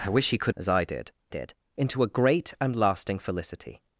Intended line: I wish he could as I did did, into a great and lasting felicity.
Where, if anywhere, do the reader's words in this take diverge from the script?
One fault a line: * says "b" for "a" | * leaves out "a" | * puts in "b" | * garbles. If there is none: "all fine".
all fine